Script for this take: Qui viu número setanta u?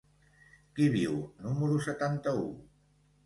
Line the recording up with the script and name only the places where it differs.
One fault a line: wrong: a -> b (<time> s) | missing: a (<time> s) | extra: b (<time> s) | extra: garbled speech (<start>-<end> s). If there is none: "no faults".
no faults